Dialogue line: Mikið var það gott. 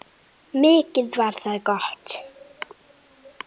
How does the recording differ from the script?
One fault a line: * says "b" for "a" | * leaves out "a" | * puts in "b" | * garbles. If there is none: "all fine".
all fine